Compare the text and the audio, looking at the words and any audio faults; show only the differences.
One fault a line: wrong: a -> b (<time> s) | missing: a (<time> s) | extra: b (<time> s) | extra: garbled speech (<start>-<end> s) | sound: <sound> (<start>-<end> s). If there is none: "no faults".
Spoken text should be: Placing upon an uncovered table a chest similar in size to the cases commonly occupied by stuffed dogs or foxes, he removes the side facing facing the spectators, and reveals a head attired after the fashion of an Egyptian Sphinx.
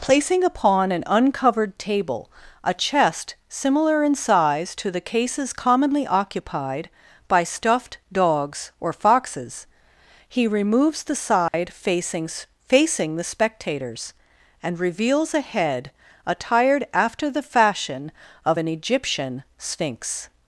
sound: dropout (11.5-11.5 s)